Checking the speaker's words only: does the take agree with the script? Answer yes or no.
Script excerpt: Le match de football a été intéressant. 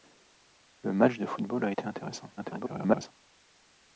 no